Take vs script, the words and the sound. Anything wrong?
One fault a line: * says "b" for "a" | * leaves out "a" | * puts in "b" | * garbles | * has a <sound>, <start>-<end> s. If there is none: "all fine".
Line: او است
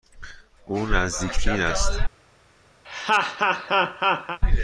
* puts in "نزدیک بین"
* has a laugh, 2.8-4.4 s